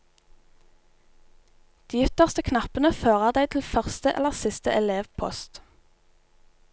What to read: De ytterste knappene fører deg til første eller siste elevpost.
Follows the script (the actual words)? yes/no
yes